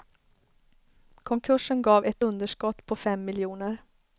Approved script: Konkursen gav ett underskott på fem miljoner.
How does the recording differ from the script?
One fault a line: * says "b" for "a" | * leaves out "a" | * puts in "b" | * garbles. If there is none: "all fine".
all fine